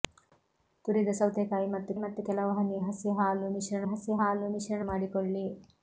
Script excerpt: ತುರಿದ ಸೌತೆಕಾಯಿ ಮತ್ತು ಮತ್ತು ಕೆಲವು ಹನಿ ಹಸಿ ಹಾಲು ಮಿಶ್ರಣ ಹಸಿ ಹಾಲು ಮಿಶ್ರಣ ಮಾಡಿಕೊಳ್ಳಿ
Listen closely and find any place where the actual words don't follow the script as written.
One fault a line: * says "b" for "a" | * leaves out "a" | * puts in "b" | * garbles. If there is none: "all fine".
all fine